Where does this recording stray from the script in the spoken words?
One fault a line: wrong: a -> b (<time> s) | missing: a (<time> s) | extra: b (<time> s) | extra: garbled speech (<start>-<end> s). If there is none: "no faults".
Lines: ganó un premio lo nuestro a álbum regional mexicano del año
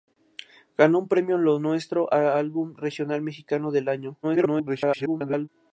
extra: garbled speech (4.2-5.5 s)